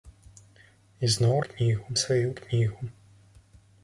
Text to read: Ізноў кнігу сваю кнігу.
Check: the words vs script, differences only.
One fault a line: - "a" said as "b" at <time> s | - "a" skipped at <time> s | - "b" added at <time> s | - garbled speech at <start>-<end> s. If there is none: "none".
none